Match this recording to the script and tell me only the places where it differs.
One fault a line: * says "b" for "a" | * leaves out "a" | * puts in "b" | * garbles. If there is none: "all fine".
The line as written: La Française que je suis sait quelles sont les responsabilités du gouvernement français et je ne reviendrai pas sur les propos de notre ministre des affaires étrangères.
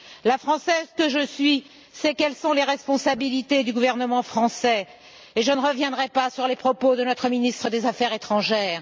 all fine